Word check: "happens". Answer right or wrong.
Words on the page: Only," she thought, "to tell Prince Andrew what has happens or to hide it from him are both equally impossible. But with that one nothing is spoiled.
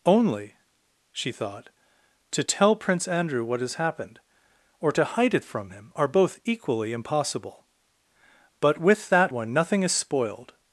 wrong